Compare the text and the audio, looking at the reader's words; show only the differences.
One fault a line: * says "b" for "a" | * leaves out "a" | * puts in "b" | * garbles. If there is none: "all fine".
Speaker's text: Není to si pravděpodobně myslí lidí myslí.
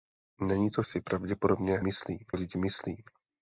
all fine